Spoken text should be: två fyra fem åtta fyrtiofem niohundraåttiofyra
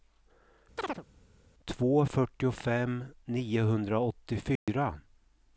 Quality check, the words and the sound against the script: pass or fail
fail